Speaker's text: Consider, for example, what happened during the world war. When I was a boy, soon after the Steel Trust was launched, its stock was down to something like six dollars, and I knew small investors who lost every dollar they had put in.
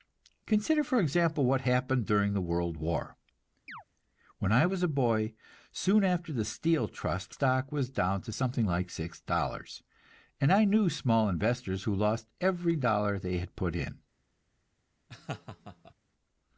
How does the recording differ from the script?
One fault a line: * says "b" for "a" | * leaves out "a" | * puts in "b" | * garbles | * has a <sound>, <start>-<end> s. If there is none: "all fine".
* has a chirp, 3.7-3.8 s
* leaves out "was launched its"
* has a laugh, 15.1-15.9 s